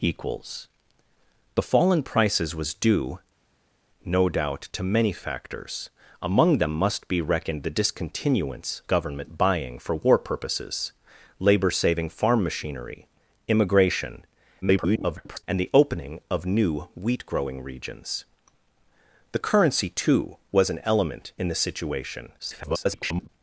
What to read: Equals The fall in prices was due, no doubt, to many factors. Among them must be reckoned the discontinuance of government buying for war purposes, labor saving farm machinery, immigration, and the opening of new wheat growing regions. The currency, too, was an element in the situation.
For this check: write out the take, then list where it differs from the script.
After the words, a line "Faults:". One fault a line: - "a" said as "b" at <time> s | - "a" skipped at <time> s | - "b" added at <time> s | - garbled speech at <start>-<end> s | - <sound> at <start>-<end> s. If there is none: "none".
Equals The fall in prices was due, no doubt, to many factors. Among them must be reckoned the discontinuance government buying for war purposes, labor saving farm machinery, immigration, [garbled] and the opening of new wheat growing regions. The currency, too, was an element in the situation. [garbled]
Faults:
- "of" skipped at 8.8 s
- garbled speech at 14.6-15.4 s
- garbled speech at 22.4-23.3 s